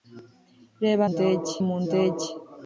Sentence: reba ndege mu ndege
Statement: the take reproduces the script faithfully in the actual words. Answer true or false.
true